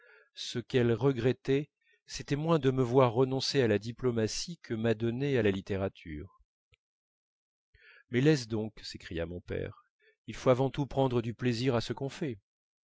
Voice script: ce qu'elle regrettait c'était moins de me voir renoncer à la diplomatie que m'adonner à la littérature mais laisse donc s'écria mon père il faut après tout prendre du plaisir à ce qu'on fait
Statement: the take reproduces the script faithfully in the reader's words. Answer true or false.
false